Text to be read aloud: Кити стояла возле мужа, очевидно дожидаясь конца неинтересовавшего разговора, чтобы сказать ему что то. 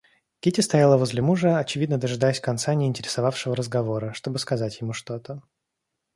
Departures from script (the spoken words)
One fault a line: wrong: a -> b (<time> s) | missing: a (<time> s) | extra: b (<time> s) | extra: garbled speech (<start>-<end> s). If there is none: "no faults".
no faults